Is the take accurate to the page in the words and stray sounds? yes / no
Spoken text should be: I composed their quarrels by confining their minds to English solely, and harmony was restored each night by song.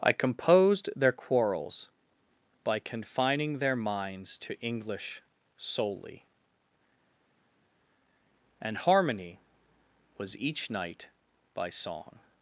no